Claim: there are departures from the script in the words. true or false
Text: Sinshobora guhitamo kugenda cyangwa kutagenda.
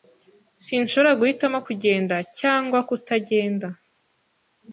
false